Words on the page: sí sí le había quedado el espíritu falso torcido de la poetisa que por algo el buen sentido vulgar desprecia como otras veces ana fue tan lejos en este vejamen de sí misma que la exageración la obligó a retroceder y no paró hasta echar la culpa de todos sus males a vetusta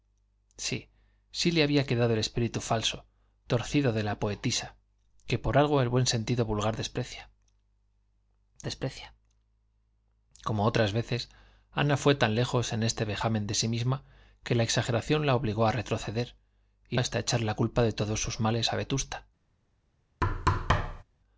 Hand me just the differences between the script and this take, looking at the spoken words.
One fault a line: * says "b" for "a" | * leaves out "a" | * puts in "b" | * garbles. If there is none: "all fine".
* puts in "desprecia"
* leaves out "no paró"